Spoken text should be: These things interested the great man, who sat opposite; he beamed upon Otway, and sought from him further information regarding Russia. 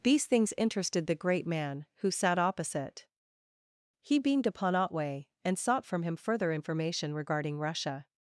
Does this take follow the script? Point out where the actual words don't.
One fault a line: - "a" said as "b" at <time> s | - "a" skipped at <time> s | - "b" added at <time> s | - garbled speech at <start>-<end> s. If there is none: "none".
none